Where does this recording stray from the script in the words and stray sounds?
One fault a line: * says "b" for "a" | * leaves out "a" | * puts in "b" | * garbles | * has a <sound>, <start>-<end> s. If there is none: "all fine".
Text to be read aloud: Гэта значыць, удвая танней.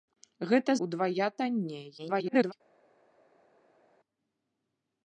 * leaves out "значыць"
* garbles